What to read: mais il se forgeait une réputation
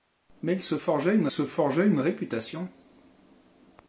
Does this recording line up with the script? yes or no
no